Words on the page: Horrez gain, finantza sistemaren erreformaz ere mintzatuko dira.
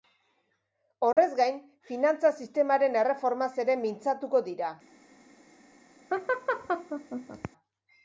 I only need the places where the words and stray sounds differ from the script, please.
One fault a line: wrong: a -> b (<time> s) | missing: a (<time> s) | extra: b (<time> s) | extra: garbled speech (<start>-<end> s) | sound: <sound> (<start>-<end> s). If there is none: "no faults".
sound: dropout (1.1-1.2 s)
sound: laugh (6.1-7.5 s)